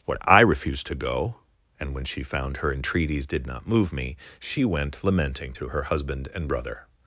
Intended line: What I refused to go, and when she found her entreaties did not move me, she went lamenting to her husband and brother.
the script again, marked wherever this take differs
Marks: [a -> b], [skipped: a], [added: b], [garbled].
What I refused to go, and when she found her entreaties did not move me, she went lamenting to her husband and brother.